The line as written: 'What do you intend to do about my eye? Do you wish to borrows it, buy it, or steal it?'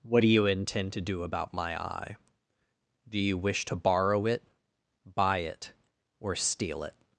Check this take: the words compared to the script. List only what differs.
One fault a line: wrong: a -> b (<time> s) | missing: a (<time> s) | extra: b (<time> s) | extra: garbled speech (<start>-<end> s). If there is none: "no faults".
wrong: borrows -> borrow (3.8 s)